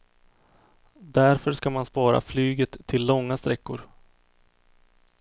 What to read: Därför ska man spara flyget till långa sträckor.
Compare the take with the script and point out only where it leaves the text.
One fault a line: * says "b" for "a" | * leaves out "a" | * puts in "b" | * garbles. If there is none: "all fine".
all fine